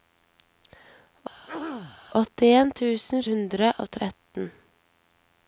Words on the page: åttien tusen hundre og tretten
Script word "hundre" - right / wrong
right